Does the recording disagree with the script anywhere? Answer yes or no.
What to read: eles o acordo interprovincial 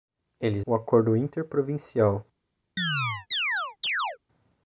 no